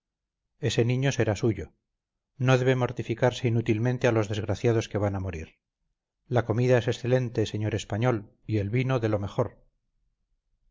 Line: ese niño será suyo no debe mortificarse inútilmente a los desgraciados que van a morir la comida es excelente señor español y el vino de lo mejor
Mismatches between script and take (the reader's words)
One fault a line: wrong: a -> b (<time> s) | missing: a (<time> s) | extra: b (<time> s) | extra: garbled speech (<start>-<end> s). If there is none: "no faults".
no faults